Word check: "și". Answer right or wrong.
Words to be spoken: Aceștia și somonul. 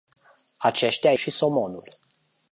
right